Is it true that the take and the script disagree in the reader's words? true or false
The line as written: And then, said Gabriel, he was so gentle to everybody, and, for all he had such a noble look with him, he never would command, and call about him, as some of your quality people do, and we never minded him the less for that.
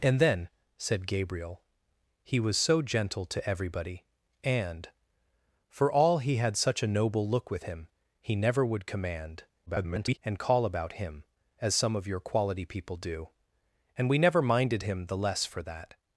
true